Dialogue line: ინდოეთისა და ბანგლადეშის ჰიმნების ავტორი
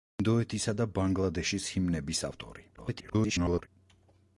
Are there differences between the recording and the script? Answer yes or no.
yes